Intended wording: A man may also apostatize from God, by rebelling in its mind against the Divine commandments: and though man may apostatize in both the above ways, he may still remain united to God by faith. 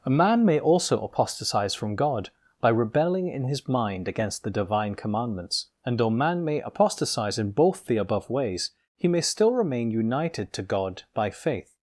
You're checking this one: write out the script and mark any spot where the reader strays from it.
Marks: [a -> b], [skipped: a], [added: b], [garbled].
A man may also apostatize from God, by rebelling in [its -> his] mind against the Divine commandments: and though man may apostatize in both the above ways, he may still remain united to God by faith.